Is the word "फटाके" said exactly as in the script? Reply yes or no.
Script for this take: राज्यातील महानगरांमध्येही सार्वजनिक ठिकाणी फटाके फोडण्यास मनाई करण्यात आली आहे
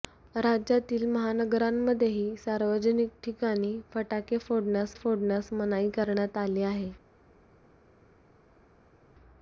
yes